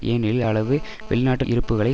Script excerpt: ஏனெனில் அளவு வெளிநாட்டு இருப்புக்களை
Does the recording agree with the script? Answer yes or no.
yes